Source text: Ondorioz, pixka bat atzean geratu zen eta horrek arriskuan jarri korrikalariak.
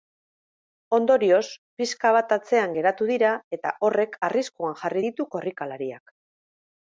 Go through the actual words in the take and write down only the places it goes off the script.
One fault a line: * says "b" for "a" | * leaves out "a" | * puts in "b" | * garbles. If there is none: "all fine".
* says "dira" for "zen"
* puts in "ditu"